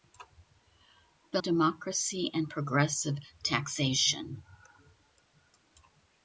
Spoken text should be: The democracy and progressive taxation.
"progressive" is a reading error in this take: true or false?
false